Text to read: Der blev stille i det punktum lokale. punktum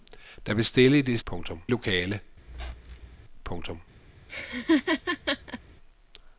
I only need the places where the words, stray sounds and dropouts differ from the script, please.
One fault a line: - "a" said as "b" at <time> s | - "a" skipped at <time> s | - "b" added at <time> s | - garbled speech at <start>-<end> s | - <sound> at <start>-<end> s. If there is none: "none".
- squeak at 2.5-3.2 s
- laugh at 4.3-5.6 s